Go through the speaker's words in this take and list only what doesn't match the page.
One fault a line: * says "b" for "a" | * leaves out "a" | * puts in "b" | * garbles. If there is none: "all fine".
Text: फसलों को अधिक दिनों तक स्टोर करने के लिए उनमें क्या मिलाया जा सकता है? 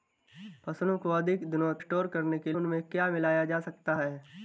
* leaves out "तक"
* leaves out "लिए"